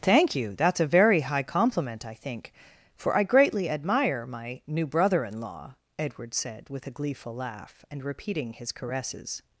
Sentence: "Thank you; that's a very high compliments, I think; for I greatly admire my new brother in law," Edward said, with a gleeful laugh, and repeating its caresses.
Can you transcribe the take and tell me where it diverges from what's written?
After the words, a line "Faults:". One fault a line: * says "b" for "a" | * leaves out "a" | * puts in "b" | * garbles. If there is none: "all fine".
"Thank you; that's a very high compliment, I think; for I greatly admire my new brother in law," Edward said, with a gleeful laugh, and repeating his caresses.
Faults:
* says "compliment" for "compliments"
* says "his" for "its"